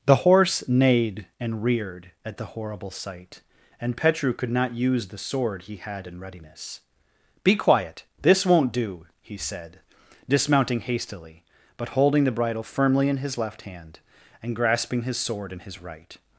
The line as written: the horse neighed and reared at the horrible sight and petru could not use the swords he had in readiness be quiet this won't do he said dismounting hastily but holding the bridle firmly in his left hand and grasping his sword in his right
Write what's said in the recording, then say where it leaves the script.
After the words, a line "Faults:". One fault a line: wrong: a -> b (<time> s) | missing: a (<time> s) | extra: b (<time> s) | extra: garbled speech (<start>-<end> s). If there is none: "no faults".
the horse neighed and reared at the horrible sight and petru could not use the sword he had in readiness be quiet this won't do he said dismounting hastily but holding the bridle firmly in his left hand and grasping his sword in his right
Faults:
wrong: swords -> sword (5.2 s)